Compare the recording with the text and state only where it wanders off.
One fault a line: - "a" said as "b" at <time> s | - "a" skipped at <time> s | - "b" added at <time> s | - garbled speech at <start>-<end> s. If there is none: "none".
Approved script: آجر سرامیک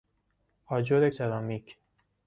none